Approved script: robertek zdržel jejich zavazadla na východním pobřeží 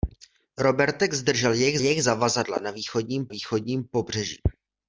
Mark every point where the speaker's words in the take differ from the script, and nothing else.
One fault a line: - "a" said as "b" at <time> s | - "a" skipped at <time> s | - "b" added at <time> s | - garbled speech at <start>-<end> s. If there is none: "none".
- "jejich" added at 1.8 s
- "východním" added at 3.3 s